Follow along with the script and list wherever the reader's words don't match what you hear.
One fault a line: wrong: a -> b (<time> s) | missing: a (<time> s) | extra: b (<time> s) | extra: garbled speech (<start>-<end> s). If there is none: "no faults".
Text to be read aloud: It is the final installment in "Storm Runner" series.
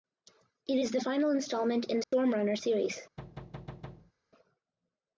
no faults